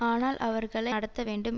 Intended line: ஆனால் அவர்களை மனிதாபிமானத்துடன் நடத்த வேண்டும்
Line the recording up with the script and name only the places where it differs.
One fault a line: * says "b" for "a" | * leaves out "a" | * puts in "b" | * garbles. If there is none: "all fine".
* leaves out "மனிதாபிமானத்துடன்"